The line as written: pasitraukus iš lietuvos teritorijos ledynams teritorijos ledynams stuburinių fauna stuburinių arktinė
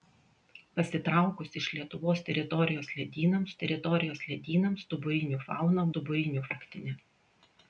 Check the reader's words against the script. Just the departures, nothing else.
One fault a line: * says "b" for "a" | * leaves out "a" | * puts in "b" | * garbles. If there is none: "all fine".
all fine